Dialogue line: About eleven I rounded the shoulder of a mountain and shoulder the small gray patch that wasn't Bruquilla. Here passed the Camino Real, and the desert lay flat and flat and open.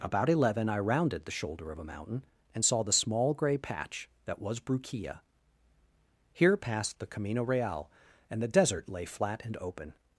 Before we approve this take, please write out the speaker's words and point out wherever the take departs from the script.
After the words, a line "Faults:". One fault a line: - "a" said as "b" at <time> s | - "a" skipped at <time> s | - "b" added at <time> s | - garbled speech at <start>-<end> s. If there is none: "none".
About eleven I rounded the shoulder of a mountain and saw the small gray patch that was Bruquilla. Here passed the Camino Real, and the desert lay flat and open.
Faults:
- "shoulder" said as "saw" at 2.6 s
- "wasn't" said as "was" at 4.4 s
- "flat and" skipped at 9.6 s